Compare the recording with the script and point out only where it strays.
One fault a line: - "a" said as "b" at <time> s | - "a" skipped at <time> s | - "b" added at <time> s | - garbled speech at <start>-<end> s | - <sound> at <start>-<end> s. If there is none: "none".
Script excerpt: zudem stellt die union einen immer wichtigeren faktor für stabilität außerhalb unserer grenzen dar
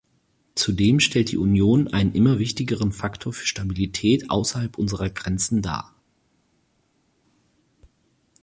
none